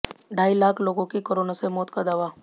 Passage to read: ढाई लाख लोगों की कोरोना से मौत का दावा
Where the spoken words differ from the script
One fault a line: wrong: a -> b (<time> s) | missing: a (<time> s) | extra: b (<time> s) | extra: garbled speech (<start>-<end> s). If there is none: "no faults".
no faults